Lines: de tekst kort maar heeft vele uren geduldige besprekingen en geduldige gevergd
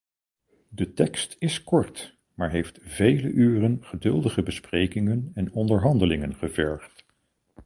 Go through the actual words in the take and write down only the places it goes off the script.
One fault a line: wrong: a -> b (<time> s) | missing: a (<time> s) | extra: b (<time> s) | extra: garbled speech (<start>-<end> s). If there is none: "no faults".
extra: is (1.4 s)
wrong: geduldige -> onderhandelingen (5.5 s)